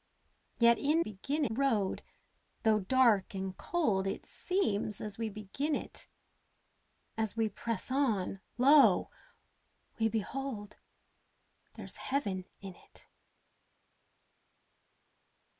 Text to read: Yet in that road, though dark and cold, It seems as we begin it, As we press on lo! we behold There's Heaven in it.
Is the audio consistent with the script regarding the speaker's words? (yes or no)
no